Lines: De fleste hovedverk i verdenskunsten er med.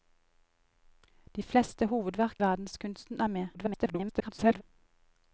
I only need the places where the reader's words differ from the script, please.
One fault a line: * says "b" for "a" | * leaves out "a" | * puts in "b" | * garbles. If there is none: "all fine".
* leaves out "i"
* garbles